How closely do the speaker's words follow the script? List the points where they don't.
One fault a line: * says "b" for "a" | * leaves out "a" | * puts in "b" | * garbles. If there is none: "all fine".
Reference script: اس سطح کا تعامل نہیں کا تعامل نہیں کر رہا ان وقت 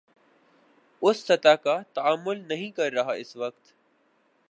* leaves out "کا تعامل نہیں"
* says "اس" for "ان"